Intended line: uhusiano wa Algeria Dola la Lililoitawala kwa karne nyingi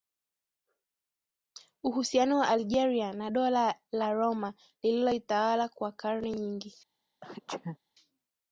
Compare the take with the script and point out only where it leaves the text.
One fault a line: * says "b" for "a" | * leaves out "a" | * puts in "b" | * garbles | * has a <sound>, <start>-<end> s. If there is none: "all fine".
* puts in "na"
* puts in "Roma"
* has a sneeze, 7.2-7.8 s